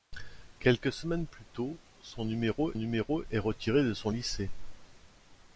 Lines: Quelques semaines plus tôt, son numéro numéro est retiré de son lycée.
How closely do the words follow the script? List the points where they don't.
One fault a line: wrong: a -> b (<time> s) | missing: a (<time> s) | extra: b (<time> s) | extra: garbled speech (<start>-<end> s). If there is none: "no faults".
no faults